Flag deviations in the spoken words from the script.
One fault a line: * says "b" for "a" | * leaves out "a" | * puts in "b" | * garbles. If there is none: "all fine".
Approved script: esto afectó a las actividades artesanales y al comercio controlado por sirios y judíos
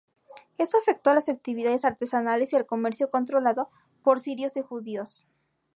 all fine